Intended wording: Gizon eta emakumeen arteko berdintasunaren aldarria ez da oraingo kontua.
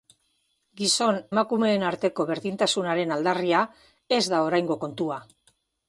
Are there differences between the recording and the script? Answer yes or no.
yes